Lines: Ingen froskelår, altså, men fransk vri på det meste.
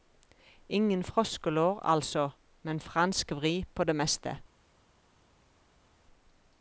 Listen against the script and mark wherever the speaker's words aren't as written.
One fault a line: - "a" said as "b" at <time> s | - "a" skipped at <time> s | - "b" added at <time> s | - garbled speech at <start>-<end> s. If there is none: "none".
none